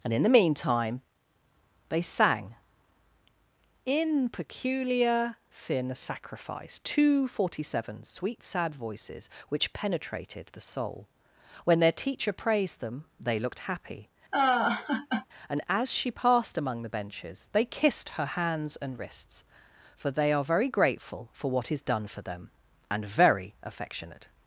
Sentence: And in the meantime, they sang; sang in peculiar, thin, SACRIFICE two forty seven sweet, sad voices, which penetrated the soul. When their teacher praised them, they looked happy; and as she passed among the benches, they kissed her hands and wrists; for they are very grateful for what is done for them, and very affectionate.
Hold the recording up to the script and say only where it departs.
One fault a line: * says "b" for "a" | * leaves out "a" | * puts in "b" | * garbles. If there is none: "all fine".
* leaves out "sang"